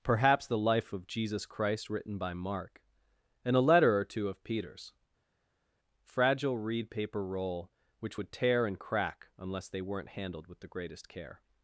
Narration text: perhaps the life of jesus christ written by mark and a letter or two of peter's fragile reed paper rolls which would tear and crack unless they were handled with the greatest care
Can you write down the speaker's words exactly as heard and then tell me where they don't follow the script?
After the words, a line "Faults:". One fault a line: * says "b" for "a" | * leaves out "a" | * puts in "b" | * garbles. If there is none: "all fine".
perhaps the life of jesus christ written by mark and a letter or two of peter's fragile reed paper roll which would tear and crack unless they weren't handled with the greatest care
Faults:
* says "roll" for "rolls"
* says "weren't" for "were"